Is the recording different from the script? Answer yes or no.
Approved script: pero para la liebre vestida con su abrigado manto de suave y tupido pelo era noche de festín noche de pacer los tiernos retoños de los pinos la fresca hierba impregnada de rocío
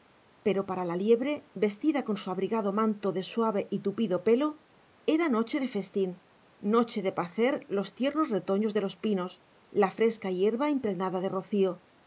no